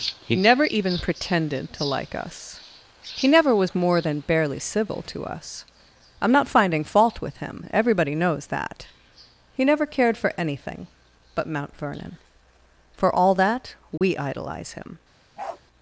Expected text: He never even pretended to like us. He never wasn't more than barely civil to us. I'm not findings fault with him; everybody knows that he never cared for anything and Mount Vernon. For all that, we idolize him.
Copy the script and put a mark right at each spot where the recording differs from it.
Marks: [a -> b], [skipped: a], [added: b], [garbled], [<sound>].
He never even pretended to like us. He never [wasn't -> was] more than barely civil to us. I'm not [findings -> finding] fault with him; everybody knows that he never cared for anything [and -> but] Mount Vernon. For all that, we [dropout] idolize him. [bark]